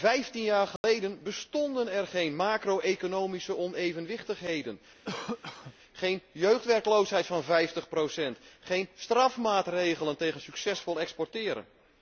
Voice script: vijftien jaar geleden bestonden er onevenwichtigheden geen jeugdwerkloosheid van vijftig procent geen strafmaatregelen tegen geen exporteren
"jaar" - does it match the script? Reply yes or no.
yes